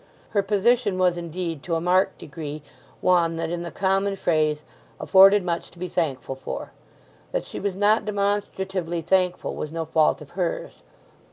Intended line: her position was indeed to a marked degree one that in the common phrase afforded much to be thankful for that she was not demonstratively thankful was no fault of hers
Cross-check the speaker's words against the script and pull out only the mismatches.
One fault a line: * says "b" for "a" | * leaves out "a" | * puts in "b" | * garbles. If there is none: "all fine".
all fine